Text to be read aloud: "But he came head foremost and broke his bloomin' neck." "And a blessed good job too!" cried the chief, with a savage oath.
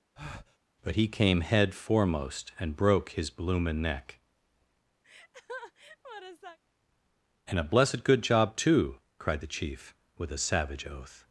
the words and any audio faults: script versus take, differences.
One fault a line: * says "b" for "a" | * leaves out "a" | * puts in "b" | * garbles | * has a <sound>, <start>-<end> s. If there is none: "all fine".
* has a breath, 0.2-0.6 s
* has a laugh, 5.0-6.6 s